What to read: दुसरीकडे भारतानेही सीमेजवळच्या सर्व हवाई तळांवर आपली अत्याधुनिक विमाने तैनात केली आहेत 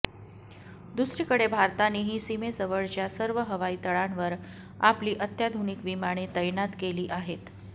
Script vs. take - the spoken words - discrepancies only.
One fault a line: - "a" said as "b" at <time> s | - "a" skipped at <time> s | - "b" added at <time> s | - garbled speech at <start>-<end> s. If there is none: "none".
none